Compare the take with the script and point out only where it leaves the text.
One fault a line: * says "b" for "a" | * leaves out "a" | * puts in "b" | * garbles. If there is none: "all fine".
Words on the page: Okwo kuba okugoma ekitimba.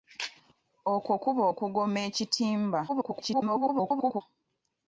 * garbles